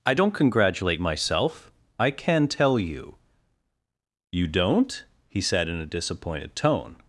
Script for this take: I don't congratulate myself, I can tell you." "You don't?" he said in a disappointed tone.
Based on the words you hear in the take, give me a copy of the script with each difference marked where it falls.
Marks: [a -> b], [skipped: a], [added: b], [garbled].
I don't congratulate myself, I can tell you." "You don't?" he said in a disappointed tone.